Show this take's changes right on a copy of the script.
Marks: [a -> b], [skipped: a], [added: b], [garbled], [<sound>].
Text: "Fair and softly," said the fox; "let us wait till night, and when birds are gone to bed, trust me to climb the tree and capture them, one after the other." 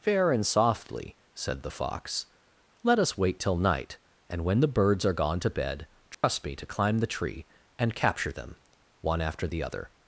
"Fair and softly," said the fox; "let us wait till night, and when [added: the] birds are gone to bed, trust [dropout] me to climb the tree and capture them, one after the other."